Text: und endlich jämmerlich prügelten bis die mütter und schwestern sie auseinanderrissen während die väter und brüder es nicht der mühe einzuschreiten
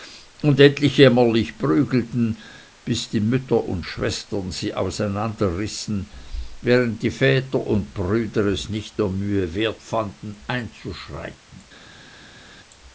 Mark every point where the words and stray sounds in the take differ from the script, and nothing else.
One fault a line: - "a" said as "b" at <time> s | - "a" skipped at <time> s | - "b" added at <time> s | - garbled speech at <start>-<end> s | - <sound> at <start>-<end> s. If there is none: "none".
- "wert fanden" added at 9.6 s